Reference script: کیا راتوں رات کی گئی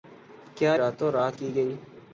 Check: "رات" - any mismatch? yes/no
no